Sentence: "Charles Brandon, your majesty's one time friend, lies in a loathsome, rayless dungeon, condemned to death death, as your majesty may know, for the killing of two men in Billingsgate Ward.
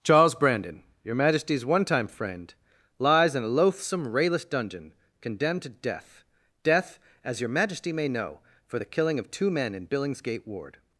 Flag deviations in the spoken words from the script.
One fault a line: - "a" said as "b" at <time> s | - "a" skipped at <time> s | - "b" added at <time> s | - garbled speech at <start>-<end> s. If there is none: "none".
none